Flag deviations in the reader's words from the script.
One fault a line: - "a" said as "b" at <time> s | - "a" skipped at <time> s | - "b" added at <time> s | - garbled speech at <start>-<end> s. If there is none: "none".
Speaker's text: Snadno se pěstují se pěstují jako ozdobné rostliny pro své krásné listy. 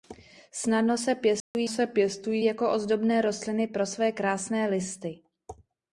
none